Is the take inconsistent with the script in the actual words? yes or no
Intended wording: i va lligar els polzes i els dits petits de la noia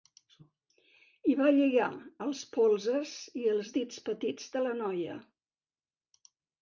no